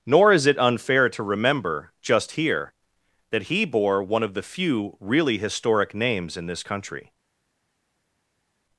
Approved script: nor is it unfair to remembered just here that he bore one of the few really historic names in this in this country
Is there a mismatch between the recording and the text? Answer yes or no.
yes